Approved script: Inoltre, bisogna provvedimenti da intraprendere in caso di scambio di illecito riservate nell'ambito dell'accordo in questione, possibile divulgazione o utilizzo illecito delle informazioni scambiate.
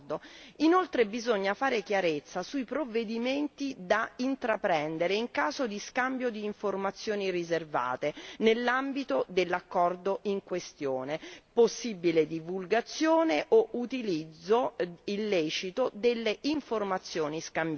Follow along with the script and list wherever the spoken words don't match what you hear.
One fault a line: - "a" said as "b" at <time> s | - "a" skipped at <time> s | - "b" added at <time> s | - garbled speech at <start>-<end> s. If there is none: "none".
- "fare chiarezza sui" added at 1.5 s
- "illecito" said as "informazioni" at 6.4 s